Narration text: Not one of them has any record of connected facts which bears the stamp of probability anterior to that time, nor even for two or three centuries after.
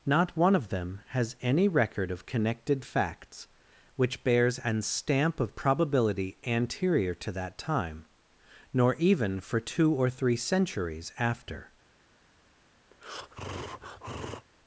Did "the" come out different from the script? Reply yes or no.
yes